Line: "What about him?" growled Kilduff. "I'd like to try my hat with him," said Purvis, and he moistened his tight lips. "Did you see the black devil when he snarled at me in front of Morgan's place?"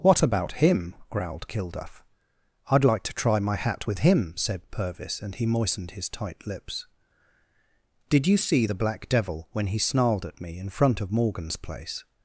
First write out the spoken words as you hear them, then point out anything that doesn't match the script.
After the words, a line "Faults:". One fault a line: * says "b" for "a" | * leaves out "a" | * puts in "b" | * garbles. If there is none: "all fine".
"What about him?" growled Kilduff. "I'd like to try my hat with him," said Purvis, and he moistened his tight lips. "Did you see the black devil when he snarled at me in front of Morgan's place?"
Faults:
all fine